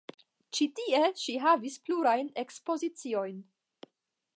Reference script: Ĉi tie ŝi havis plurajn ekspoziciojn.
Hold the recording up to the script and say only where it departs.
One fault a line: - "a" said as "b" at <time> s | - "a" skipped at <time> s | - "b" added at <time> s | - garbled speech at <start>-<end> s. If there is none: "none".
none